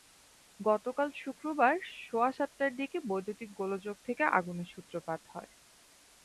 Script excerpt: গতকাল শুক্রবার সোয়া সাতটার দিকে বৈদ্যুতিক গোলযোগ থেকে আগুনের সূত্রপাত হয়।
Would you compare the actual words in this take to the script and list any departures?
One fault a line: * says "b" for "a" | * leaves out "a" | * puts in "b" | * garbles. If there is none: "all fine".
all fine